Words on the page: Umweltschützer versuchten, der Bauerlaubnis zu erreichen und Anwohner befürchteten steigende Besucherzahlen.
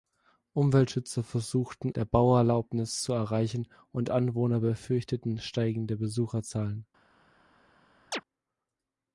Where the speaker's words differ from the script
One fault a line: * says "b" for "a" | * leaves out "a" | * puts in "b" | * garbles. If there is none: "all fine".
all fine